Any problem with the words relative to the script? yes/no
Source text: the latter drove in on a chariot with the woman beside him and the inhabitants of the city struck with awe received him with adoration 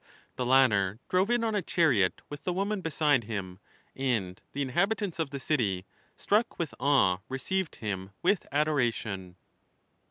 no